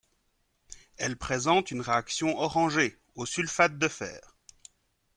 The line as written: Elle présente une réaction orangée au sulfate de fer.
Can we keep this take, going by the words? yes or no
yes